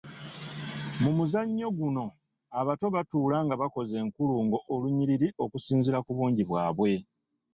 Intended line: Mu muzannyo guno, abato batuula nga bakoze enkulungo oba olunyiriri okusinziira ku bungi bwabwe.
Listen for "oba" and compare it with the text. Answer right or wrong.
wrong